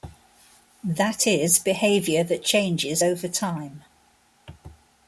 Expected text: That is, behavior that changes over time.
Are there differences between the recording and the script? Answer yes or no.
no